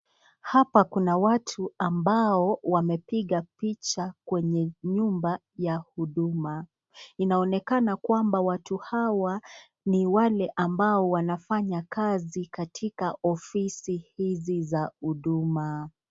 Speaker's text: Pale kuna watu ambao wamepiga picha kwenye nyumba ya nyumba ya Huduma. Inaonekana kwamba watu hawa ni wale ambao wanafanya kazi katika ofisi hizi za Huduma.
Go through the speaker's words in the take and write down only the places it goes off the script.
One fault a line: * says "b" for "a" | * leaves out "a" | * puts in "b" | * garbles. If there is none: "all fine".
* says "Hapa" for "Pale"
* leaves out "nyumba ya"